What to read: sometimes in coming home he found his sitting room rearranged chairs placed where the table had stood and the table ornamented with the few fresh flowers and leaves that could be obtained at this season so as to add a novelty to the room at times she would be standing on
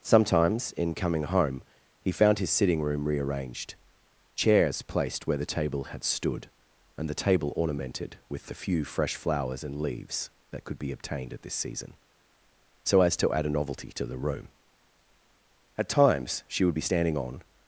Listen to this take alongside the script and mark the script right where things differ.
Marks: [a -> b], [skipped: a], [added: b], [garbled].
sometimes in coming home he found his sitting room rearranged chairs placed where the table had stood and the table ornamented with the few fresh flowers and leaves that could be obtained at this season so as to add a novelty to the room at times she would be standing on